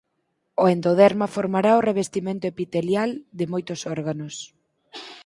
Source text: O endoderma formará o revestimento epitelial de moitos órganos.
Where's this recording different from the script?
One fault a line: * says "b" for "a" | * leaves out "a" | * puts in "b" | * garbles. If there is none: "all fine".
all fine